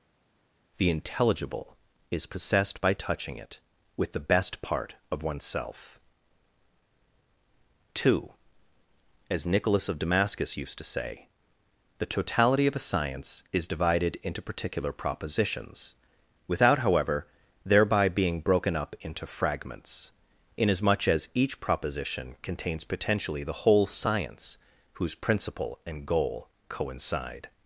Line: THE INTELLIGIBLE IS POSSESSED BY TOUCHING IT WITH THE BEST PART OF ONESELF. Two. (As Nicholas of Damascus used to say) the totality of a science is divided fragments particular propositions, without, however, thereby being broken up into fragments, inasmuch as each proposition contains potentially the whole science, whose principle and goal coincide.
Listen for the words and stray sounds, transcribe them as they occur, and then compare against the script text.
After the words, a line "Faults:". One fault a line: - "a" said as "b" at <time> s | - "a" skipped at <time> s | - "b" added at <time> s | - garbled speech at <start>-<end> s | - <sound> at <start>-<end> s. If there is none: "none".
THE INTELLIGIBLE IS POSSESSED BY TOUCHING IT WITH THE BEST PART OF ONESELF. Two. (As Nicholas of Damascus used to say) the totality of a science is divided into particular propositions, without, however, thereby being broken up into fragments, inasmuch as each proposition contains potentially the whole science, whose principle and goal coincide.
Faults:
- "fragments" said as "into" at 14.2 s